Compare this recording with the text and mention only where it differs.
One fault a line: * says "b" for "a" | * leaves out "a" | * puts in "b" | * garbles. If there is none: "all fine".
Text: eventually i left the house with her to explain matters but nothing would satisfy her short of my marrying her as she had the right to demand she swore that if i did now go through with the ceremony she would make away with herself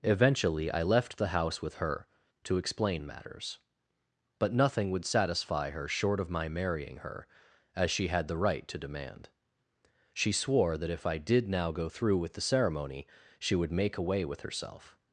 all fine